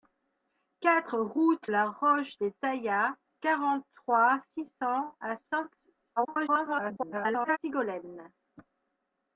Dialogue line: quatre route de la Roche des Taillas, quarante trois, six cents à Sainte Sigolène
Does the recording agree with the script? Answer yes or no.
no